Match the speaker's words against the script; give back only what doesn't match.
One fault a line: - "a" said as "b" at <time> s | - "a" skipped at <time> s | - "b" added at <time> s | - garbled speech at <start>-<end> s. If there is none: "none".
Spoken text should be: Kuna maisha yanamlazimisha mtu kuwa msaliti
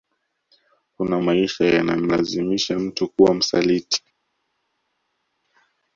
none